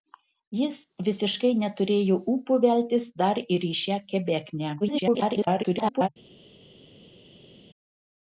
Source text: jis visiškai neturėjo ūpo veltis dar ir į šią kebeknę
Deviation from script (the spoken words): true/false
true